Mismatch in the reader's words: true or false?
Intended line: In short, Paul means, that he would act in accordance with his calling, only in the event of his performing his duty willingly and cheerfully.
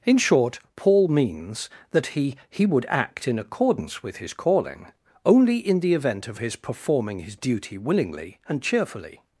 true